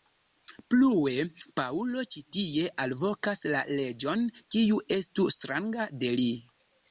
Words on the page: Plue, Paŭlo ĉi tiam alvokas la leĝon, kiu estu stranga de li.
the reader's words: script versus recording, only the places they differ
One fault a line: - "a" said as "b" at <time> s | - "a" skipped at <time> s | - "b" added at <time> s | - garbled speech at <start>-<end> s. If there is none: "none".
- "tiam" said as "tie" at 2.4 s